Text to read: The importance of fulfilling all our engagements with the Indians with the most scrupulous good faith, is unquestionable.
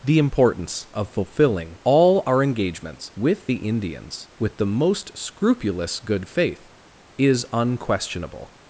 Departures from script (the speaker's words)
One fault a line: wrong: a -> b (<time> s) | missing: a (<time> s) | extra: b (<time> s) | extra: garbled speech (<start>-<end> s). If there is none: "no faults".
no faults